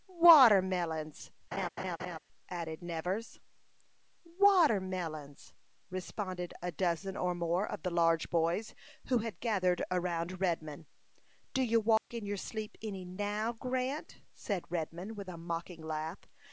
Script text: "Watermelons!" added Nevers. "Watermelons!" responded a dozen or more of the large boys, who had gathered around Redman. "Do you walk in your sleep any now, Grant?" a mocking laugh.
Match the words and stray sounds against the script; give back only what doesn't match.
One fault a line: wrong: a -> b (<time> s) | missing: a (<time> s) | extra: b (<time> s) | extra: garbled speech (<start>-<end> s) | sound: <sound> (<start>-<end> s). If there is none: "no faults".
sound: laugh (1.5-2.2 s)
sound: dropout (12.0-12.1 s)
extra: said Redman with (14.3 s)